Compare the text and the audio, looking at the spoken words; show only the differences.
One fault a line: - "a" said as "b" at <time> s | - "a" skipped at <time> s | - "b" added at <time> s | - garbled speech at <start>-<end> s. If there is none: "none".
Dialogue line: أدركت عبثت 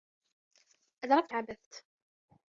none